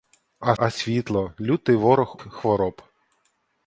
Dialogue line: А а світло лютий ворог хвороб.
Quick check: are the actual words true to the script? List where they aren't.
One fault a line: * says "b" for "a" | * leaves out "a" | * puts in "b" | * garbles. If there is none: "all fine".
all fine